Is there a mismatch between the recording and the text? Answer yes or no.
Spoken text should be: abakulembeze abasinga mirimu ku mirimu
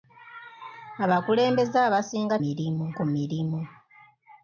no